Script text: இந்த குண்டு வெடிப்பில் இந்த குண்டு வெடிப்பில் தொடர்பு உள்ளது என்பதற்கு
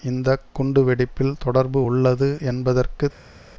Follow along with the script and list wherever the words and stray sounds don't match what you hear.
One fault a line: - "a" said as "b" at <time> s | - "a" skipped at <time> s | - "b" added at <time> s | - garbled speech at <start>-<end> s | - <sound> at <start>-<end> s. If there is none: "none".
- "இந்த குண்டு வெடிப்பில்" skipped at 1.3 s